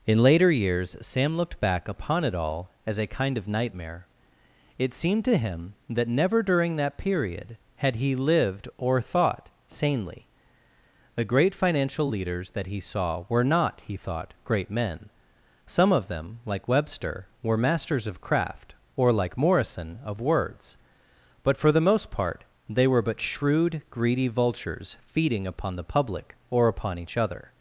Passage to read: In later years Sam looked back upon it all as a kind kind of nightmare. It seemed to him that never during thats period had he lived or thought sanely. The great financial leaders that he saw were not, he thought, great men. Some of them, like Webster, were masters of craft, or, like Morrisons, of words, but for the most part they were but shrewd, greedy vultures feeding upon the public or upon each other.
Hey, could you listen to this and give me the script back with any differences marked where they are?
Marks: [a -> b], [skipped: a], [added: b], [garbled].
In later years Sam looked back upon it all as a kind [skipped: kind] of nightmare. It seemed to him that never during [thats -> that] period had he lived or thought sanely. The great financial leaders that he saw were not, he thought, great men. Some of them, like Webster, were masters of craft, or, like [Morrisons, -> Morrison] of words, but for the most part they were but shrewd, greedy vultures feeding upon the public or upon each other.